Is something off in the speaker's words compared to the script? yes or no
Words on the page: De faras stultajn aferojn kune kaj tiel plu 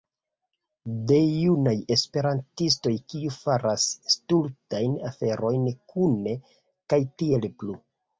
yes